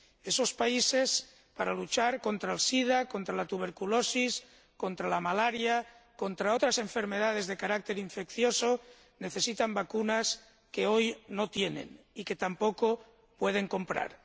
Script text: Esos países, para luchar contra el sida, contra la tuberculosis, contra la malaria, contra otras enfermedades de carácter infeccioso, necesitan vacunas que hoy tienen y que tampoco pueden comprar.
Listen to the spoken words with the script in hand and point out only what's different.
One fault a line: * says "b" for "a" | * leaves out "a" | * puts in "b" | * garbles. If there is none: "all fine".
* puts in "no"